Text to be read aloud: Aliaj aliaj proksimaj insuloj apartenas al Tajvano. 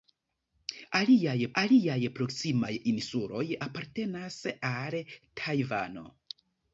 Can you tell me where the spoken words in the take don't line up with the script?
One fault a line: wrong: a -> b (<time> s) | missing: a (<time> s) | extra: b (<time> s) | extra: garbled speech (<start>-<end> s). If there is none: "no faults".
no faults